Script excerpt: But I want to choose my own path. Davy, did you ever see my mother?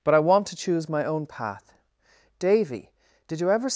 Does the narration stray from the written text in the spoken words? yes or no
yes